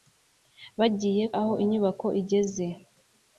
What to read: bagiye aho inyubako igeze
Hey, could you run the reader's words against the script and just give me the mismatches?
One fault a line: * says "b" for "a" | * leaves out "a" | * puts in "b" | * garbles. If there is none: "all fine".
all fine